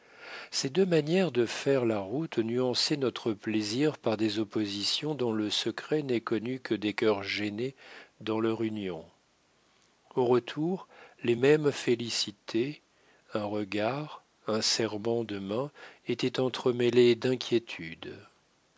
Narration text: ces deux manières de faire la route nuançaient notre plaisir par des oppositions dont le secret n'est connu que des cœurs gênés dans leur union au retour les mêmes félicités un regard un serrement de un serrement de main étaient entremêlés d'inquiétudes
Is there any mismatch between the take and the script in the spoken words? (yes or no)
yes